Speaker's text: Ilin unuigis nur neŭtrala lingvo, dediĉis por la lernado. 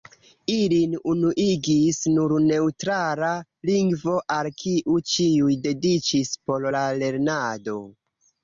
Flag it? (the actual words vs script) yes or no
yes